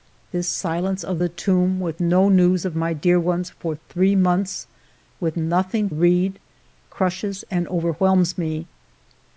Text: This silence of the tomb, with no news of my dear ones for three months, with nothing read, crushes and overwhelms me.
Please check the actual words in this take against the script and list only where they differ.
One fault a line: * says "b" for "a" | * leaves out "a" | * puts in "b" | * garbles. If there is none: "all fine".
all fine